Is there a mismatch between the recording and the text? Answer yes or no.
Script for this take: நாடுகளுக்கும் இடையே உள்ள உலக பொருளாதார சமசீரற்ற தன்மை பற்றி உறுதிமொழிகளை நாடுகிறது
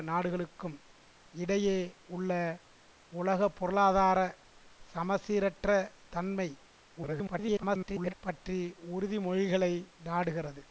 yes